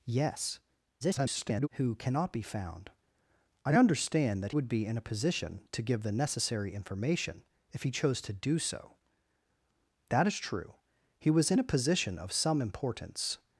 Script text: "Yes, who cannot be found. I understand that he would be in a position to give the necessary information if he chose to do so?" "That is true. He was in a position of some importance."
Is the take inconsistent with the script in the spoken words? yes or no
yes